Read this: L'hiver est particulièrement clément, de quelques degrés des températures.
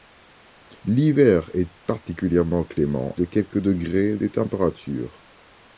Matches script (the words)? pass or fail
pass